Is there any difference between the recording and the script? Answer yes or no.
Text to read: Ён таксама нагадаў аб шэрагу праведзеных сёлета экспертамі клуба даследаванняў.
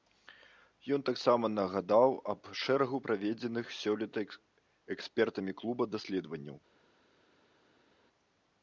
no